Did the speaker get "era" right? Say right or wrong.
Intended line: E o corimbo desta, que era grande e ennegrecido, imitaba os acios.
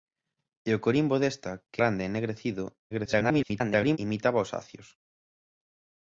wrong